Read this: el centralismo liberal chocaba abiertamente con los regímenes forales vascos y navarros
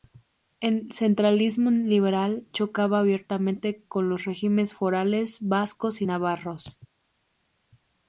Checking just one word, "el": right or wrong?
right